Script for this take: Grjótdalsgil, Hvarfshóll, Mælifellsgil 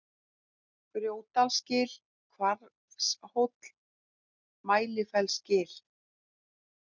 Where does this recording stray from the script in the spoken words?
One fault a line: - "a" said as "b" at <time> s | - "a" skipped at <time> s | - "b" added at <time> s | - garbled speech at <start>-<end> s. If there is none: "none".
none